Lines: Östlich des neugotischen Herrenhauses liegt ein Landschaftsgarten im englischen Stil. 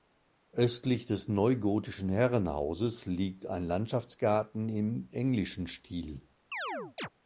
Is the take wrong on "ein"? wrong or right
right